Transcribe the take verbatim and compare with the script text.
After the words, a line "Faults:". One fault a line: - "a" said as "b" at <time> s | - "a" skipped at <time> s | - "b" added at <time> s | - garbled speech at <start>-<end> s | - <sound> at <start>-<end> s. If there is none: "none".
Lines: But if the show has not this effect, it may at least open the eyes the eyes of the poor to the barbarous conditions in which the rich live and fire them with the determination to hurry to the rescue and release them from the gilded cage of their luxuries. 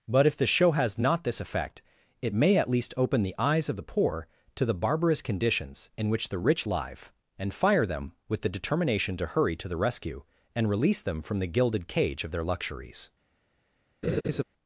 But if the show has not this effect, it may at least open the eyes of the poor to the barbarous conditions in which the rich live and fire them with the determination to hurry to the rescue and release them from the gilded cage of their luxuries.
Faults:
- "the eyes" skipped at 3.7 s
- laugh at 14.0-14.4 s